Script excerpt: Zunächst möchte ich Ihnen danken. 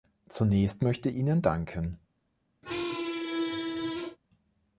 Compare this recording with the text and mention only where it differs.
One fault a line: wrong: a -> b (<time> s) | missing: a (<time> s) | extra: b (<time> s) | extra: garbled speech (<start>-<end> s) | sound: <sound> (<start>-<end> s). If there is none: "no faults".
missing: ich (1.1 s)
sound: squeak (2.6-4.2 s)